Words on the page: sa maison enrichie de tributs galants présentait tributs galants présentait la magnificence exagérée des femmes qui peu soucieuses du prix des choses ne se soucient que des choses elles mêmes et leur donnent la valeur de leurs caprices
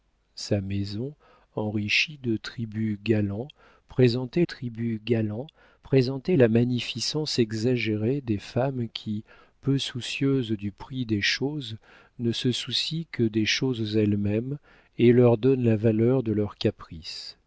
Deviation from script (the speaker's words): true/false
false